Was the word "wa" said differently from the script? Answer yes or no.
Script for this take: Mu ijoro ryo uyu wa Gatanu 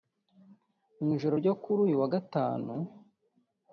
no